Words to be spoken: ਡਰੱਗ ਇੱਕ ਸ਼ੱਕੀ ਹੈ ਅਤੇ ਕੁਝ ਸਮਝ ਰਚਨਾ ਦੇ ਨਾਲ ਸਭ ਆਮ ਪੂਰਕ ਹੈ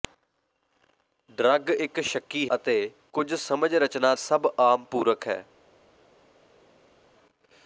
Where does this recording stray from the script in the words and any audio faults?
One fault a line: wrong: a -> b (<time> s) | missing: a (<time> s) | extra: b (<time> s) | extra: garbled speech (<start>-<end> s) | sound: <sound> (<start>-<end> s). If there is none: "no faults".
missing: ਹੈ (2.5 s)
missing: ਦੇ ਨਾਲ (4.1 s)